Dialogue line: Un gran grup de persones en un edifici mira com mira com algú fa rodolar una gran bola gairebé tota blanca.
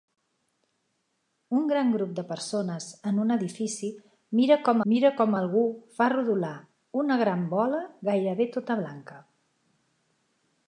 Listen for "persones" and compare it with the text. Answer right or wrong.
right